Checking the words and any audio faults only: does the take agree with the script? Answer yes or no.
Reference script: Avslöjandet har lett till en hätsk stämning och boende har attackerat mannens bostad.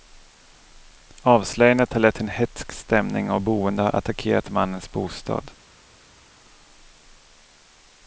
yes